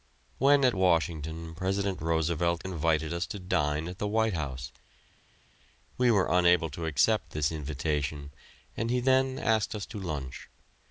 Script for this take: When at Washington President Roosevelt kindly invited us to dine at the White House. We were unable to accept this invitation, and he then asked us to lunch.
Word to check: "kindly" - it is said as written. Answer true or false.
false